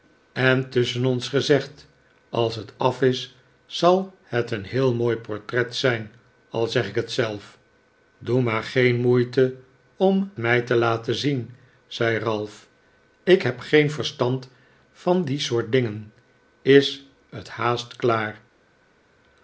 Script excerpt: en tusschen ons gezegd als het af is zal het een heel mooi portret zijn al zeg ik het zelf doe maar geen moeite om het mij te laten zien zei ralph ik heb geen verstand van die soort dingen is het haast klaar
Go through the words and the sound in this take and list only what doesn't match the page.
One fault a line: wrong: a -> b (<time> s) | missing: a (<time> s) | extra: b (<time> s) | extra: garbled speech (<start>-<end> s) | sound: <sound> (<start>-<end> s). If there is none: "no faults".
missing: het (10.3 s)